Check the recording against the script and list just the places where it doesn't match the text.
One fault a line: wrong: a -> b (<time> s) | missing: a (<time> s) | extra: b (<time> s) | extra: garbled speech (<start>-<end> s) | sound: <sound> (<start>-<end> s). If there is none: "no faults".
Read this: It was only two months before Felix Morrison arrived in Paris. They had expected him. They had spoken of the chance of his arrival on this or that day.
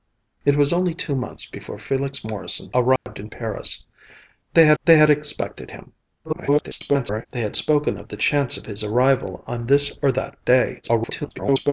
sound: dropout (3.0-3.1 s)
extra: they had (4.8 s)
extra: garbled speech (6.2-7.3 s)
extra: garbled speech (10.8-11.7 s)